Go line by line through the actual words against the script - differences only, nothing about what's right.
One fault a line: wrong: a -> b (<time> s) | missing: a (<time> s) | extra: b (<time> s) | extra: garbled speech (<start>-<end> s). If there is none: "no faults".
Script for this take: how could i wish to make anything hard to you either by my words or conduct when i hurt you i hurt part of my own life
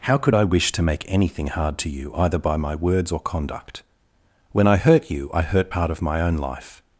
no faults